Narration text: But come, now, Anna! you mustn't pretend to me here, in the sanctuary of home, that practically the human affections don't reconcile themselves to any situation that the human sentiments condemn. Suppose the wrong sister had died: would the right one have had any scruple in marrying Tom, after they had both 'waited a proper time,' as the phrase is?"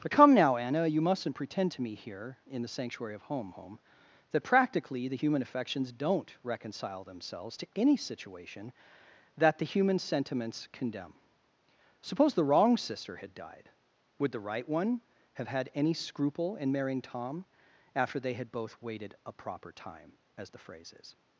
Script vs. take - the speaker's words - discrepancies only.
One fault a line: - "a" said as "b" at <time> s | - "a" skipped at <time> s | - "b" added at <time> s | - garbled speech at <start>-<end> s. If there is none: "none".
- "home" added at 3.5 s